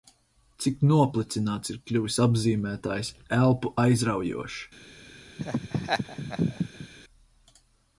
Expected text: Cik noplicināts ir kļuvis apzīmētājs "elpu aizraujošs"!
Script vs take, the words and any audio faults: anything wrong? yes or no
yes